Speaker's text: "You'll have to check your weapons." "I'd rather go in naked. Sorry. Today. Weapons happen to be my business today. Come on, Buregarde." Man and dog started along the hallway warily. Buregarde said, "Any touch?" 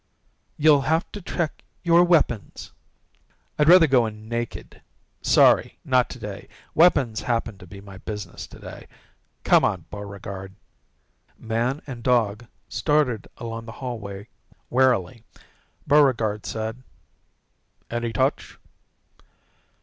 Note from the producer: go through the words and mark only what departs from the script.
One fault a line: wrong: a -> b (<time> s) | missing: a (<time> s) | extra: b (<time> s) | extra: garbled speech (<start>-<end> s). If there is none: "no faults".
extra: Not (5.8 s)